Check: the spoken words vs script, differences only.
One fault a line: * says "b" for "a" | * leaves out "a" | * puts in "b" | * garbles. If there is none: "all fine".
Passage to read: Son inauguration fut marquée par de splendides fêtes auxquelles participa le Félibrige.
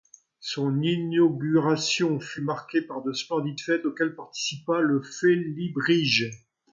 all fine